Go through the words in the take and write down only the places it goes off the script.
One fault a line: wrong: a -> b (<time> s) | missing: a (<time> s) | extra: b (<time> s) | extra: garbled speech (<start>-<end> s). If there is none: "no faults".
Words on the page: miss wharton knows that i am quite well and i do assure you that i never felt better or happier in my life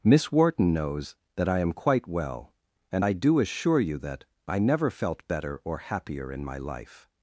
no faults